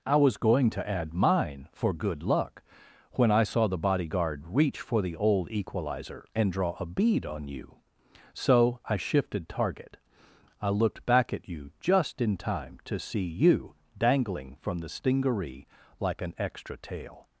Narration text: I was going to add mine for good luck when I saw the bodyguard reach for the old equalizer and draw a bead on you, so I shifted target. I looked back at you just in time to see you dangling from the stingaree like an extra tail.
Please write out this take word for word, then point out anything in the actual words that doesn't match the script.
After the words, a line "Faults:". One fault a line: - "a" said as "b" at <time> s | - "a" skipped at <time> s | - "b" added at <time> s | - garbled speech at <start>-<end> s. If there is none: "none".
I was going to add mine for good luck when I saw the bodyguard reach for the old equalizer and draw a bead on you, so I shifted target. I looked back at you just in time to see you dangling from the stingaree like an extra tail.
Faults:
none